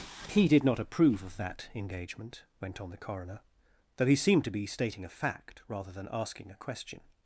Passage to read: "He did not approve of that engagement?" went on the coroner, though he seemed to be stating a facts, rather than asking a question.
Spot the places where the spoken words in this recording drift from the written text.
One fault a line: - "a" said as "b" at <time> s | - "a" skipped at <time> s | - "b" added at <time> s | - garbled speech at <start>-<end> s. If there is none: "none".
- "facts" said as "fact" at 5.1 s